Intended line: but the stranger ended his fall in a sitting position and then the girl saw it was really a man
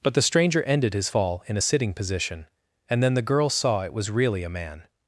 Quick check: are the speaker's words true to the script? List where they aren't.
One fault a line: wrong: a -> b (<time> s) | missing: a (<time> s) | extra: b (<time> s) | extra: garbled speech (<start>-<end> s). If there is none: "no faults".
no faults